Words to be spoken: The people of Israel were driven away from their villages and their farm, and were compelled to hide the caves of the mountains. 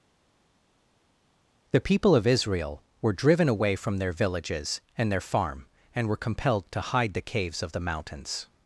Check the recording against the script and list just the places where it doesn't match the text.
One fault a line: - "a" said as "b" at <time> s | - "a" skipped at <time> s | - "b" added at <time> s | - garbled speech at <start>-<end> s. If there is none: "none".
none